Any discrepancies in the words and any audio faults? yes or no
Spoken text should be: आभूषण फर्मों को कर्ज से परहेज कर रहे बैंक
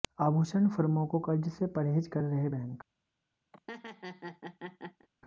yes